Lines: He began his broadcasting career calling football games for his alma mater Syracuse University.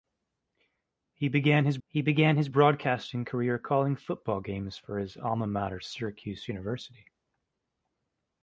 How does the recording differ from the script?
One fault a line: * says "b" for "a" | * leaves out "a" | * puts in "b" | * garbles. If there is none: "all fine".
* puts in "he began his"